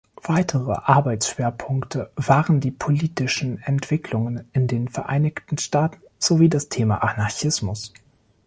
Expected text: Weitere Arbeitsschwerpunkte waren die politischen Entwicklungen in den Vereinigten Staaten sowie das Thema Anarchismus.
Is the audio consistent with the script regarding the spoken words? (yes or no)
yes